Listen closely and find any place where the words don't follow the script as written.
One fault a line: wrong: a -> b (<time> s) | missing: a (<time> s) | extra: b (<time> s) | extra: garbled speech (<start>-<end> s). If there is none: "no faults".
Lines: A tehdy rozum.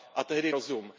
no faults